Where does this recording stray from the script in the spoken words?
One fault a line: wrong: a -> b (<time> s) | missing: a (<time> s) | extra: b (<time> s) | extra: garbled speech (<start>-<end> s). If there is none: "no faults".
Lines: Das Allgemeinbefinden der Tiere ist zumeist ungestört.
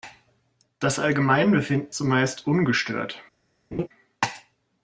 missing: der Tiere ist (1.9 s)